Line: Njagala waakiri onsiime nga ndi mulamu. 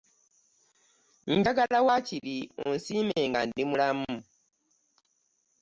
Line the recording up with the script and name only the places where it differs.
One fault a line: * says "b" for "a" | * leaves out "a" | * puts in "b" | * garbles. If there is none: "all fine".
all fine